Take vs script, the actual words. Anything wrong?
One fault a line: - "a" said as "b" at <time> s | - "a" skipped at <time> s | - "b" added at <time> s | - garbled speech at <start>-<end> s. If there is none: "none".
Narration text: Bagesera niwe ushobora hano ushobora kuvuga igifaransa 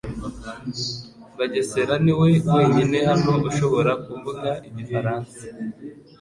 - "ushobora" said as "wenyine" at 2.5 s